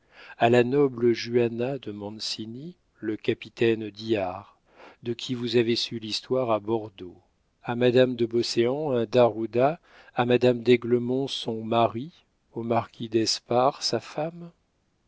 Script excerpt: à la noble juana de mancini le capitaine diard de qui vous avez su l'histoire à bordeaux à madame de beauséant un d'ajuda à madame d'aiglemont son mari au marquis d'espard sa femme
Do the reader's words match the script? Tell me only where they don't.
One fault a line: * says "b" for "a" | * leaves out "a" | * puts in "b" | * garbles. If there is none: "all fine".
all fine